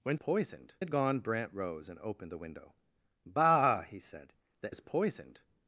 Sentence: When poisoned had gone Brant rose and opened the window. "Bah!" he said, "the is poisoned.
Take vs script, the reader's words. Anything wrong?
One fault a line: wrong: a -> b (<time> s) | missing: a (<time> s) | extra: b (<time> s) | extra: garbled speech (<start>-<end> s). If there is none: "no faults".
no faults